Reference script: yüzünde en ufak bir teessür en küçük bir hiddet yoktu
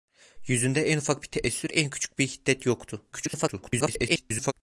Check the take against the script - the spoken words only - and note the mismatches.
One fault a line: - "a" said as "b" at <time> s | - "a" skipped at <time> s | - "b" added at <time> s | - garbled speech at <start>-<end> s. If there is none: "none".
- garbled speech at 3.1-4.5 s